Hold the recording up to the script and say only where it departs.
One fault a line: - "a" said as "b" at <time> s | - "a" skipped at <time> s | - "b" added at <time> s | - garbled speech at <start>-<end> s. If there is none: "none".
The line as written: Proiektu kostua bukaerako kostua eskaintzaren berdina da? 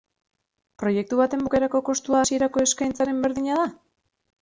- "kostua" said as "baten" at 1.2 s
- "hasierako" added at 2.2 s